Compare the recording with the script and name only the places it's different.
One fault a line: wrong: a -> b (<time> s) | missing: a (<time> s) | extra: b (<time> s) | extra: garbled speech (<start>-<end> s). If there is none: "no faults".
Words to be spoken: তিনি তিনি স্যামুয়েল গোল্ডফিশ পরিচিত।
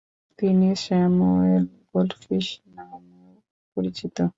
missing: তিনি (0.7 s)
extra: নামেও (2.7 s)